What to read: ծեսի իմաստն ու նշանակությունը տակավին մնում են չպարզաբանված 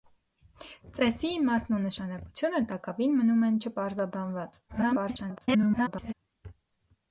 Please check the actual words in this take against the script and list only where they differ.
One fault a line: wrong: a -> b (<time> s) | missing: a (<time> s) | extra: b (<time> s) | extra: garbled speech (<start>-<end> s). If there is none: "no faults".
extra: garbled speech (4.7-6.1 s)